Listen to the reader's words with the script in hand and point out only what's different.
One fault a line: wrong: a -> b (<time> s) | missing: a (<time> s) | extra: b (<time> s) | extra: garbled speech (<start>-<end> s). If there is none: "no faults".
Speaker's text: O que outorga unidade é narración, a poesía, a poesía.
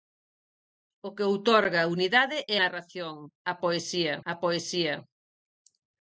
no faults